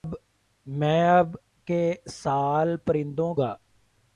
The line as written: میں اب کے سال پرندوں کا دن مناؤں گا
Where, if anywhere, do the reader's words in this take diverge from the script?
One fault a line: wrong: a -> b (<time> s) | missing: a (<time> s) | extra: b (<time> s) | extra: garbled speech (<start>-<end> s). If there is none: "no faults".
missing: کا دن مناؤں (3.3 s)